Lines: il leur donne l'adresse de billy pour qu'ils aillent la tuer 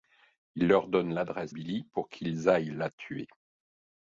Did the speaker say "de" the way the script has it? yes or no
no